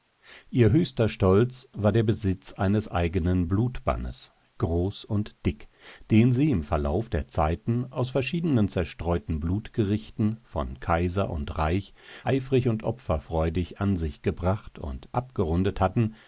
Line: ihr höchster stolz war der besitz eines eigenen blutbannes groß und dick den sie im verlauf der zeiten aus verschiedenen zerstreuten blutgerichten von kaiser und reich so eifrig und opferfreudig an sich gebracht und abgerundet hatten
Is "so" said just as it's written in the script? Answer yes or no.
no